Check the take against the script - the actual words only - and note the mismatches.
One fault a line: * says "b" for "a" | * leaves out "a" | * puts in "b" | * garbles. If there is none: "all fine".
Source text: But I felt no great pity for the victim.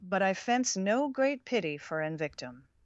* says "fence" for "felt"
* says "an" for "the"